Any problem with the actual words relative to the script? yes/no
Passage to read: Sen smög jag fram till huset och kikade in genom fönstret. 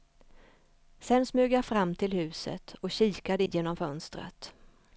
yes